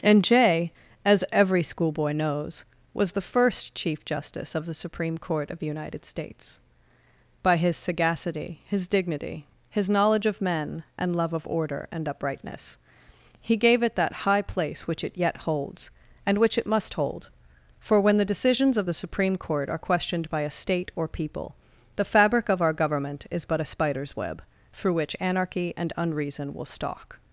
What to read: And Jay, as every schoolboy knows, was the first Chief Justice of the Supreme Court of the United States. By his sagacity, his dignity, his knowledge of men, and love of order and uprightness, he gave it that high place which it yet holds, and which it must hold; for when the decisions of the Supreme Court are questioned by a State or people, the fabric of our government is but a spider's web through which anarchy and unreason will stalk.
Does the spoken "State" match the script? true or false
true